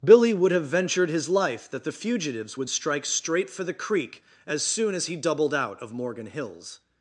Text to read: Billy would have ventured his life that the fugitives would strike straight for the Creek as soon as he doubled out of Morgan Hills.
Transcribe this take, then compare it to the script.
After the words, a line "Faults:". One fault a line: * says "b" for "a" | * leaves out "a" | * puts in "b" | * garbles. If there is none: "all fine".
Billy would have ventured his life that the fugitives would strike straight for the Creek as soon as he doubled out of Morgan Hills.
Faults:
all fine